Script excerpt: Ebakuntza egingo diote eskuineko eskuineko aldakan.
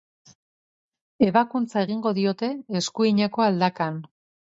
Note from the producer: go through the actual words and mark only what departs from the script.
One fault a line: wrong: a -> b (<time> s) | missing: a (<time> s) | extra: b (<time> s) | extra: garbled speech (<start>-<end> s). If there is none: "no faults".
missing: eskuineko (3.4 s)